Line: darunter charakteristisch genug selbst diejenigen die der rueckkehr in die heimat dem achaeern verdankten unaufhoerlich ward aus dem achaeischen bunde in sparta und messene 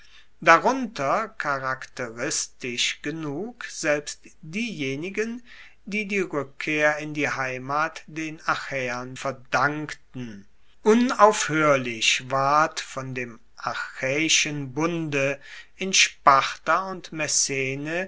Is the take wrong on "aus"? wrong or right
wrong